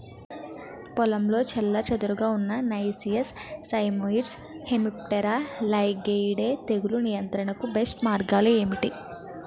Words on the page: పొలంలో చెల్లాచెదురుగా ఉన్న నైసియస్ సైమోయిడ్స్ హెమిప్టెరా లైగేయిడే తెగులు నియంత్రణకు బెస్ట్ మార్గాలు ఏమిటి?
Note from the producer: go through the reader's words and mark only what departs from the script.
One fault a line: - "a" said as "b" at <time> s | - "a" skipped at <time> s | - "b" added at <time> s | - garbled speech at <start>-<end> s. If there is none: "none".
none